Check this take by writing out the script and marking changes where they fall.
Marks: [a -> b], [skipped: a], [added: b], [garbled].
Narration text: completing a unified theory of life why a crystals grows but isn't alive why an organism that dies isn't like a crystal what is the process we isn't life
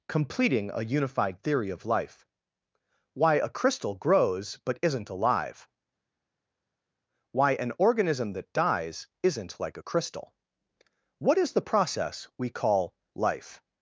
completing a unified theory of life why a [crystals -> crystal] grows but isn't alive why an organism that dies isn't like a crystal what is the process we [isn't -> call] life